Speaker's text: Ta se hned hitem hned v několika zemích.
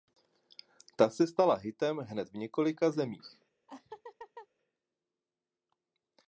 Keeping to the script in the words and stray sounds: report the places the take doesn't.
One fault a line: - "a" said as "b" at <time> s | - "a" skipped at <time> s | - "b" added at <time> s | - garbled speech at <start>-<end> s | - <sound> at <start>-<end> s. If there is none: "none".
- "hned" said as "stala" at 1.3 s
- laugh at 3.7-4.5 s